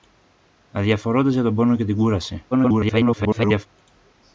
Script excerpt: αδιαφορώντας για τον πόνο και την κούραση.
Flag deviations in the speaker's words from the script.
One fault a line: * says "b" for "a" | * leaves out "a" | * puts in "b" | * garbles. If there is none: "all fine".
* garbles